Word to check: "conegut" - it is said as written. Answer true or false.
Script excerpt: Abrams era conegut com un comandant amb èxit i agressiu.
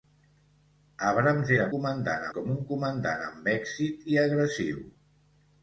false